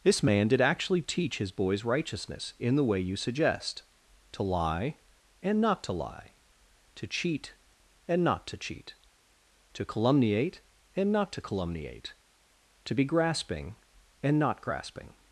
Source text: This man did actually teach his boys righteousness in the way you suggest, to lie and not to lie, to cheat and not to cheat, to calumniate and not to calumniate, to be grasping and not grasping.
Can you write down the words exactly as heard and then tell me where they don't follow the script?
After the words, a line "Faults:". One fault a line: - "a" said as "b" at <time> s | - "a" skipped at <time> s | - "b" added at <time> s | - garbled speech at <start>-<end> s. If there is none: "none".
This man did actually teach his boys righteousness in the way you suggest, to lie and not to lie, to cheat and not to cheat, to calumniate and not to calumniate, to be grasping and not grasping.
Faults:
none